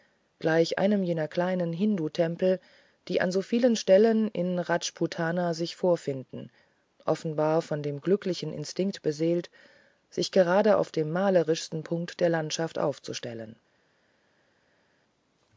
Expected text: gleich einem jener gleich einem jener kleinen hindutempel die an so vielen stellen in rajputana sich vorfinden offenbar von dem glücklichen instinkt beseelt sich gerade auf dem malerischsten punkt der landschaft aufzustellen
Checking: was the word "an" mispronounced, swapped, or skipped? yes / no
no